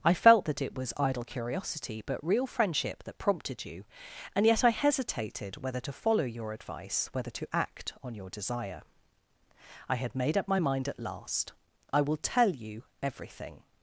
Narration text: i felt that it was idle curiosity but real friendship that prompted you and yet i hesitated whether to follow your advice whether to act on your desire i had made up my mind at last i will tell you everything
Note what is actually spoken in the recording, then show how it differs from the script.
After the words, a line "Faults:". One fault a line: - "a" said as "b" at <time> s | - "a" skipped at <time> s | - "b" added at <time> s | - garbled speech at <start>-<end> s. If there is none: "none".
i felt that it was idle curiosity but real friendship that prompted you and yet i hesitated whether to follow your advice whether to act on your desire i had made up my mind at last i will tell you everything
Faults:
none